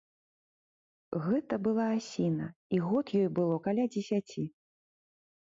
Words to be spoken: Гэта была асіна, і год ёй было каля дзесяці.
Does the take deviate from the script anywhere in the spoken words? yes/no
no